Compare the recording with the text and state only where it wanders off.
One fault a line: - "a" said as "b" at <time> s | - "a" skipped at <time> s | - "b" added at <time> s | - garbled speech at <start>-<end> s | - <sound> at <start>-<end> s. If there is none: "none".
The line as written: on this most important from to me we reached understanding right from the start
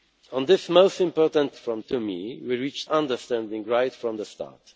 none